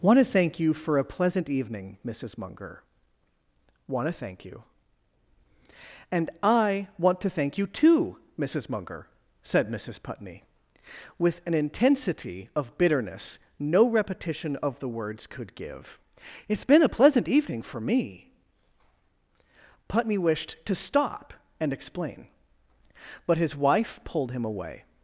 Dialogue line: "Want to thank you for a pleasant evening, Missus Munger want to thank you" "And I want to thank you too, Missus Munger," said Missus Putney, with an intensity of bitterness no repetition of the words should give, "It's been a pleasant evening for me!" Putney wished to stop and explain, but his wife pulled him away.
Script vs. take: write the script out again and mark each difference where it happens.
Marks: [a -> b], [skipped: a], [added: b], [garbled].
"Want to thank you for a pleasant evening, Missus Munger want to thank you" "And I want to thank you too, Missus Munger," said Missus Putney, with an intensity of bitterness no repetition of the words [should -> could] give, "It's been a pleasant evening for me!" Putney wished to stop and explain, but his wife pulled him away.